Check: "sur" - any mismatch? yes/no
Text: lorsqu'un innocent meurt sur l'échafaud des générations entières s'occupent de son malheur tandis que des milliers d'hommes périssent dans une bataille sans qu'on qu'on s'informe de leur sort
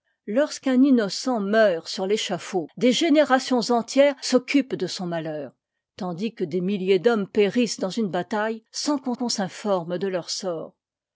no